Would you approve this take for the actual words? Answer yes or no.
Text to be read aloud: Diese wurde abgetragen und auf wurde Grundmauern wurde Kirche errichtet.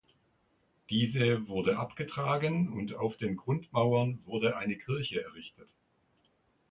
no